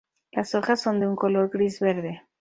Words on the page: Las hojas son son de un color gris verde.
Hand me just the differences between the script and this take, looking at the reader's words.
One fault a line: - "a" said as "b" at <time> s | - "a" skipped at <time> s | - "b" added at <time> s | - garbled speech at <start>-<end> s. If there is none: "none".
- "son" skipped at 1.0 s